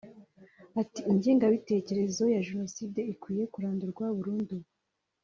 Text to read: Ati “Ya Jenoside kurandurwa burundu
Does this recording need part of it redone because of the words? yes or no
yes